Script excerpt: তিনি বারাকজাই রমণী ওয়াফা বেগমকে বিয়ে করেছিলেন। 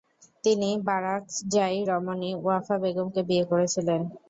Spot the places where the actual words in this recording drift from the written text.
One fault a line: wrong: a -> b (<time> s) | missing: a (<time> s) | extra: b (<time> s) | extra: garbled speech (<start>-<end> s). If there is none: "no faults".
no faults